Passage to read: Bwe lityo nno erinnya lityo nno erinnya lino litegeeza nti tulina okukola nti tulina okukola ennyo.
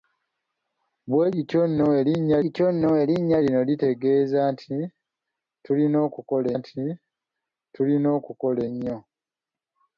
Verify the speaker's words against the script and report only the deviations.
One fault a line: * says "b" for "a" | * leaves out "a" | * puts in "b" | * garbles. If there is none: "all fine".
all fine